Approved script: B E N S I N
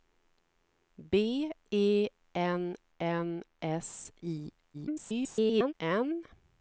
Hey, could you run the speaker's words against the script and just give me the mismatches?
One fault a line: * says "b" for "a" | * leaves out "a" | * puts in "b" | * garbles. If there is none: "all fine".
* puts in "N"
* garbles